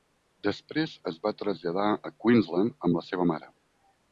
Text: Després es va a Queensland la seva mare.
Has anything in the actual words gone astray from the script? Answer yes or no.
yes